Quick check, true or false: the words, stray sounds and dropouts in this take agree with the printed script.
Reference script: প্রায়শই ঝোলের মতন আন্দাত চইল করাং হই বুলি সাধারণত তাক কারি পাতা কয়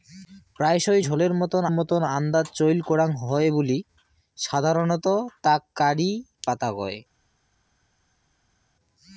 false